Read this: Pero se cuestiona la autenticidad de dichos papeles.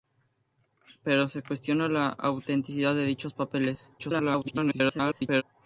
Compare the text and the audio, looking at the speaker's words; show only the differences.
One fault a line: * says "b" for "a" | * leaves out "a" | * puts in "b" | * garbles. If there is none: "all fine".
* garbles